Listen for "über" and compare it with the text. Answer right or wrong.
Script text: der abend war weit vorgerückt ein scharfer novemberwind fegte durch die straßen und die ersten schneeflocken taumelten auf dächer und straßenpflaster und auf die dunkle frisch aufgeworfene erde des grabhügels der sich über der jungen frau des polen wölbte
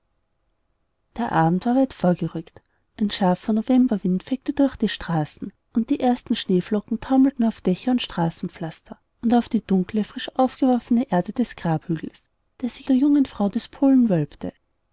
wrong